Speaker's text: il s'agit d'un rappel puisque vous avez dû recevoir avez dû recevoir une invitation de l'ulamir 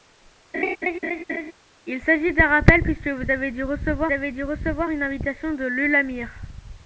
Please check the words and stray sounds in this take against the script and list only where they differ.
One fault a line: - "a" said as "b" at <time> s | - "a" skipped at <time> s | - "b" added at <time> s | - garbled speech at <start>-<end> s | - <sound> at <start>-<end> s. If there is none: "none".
- laugh at 0.5-1.5 s